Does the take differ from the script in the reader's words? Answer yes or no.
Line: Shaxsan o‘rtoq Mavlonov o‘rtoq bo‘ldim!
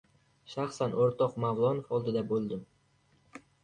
yes